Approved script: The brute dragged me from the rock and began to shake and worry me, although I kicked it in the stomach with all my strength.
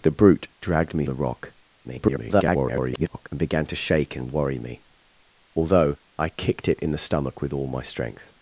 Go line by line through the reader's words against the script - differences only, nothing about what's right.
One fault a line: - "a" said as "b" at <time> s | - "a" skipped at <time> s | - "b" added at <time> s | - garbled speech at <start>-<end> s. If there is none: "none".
- "from" skipped at 1.1 s
- garbled speech at 1.8-3.3 s